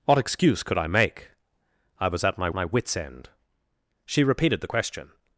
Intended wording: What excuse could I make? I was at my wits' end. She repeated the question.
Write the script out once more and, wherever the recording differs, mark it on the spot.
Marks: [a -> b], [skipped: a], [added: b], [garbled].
What excuse could I make? I was at my [added: my] wits' end. She repeated the question.